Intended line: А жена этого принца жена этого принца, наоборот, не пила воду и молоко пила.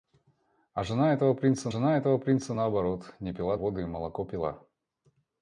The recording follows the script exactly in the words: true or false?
true